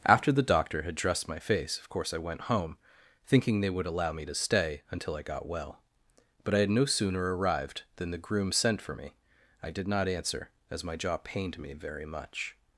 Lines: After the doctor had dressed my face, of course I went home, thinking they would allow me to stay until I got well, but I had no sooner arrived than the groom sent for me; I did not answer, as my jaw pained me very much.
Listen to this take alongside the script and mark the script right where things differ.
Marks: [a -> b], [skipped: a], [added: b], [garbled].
After the doctor had dressed my face, of course I went home, thinking they would allow me to stay until I got well, but I had no sooner arrived than the groom sent for me; I did not answer, as my jaw pained me very much.